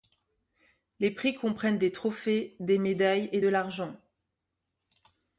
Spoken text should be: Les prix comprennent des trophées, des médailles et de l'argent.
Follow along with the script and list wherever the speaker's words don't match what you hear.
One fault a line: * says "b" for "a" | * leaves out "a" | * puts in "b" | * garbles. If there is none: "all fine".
all fine